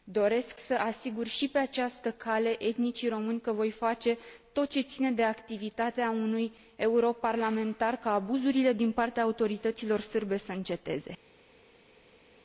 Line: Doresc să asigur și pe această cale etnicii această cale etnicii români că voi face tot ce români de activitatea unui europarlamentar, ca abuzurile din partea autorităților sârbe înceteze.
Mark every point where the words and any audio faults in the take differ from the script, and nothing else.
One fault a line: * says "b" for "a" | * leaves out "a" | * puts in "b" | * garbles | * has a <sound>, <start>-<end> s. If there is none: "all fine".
* leaves out "această cale etnicii"
* says "ține" for "români"
* puts in "să"